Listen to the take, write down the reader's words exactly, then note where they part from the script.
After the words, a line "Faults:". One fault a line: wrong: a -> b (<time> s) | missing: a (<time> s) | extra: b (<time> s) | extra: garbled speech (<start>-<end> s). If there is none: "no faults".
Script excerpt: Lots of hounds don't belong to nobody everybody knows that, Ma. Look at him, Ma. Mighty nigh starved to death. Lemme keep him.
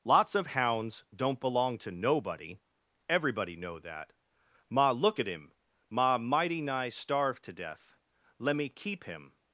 Lots of hounds don't belong to nobody everybody know that, Ma. Look at him, Ma. Mighty nigh starved to death. Lemme keep him.
Faults:
wrong: knows -> know (3.6 s)